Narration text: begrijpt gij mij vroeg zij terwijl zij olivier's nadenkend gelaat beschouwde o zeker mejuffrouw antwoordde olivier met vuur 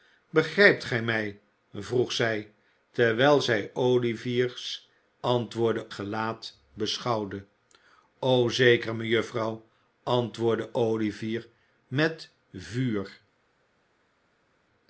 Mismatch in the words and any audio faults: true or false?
true